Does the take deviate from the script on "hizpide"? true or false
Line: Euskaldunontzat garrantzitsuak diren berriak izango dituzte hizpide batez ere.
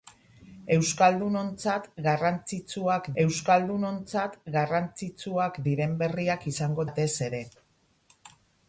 true